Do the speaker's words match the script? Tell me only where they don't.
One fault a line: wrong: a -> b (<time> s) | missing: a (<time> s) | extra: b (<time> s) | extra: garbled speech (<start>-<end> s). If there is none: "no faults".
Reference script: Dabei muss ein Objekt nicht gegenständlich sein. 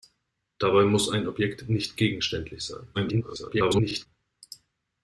extra: garbled speech (2.9-4.1 s)